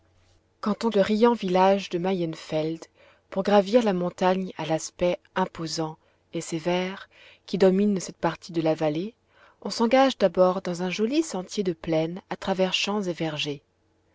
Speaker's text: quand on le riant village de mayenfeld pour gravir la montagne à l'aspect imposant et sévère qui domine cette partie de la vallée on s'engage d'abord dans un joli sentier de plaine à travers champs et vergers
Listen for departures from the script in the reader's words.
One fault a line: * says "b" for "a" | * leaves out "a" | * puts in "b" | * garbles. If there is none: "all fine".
all fine